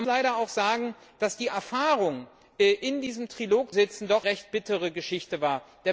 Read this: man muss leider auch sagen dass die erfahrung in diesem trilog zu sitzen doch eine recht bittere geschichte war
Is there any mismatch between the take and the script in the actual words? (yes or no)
yes